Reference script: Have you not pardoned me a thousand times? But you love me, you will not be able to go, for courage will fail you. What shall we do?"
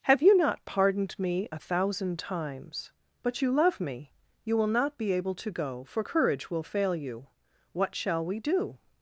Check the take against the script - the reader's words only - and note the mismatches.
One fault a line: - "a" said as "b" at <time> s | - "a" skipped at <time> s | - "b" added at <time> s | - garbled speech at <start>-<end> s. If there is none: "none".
none